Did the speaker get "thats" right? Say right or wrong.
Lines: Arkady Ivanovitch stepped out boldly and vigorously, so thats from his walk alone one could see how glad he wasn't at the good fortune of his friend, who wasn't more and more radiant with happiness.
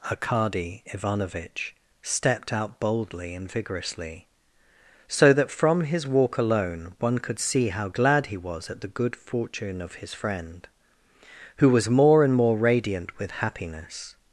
wrong